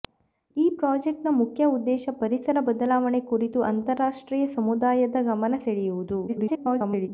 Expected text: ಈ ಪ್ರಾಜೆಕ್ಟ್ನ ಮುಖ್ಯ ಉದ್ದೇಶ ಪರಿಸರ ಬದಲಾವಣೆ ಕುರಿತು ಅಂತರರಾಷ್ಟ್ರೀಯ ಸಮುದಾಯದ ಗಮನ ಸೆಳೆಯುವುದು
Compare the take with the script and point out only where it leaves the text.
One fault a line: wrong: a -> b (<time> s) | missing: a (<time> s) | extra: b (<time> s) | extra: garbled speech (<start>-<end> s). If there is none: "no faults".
extra: garbled speech (6.3-7.1 s)